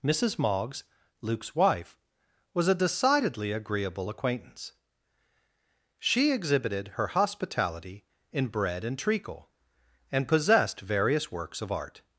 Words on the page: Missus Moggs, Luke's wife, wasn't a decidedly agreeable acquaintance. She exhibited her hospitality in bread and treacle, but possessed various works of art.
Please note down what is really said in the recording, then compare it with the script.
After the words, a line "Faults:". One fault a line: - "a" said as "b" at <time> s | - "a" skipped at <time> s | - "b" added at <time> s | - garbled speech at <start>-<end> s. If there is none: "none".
Missus Moggs, Luke's wife, was a decidedly agreeable acquaintance. She exhibited her hospitality in bread and treacle, and possessed various works of art.
Faults:
- "wasn't" said as "was" at 2.5 s
- "but" said as "and" at 10.1 s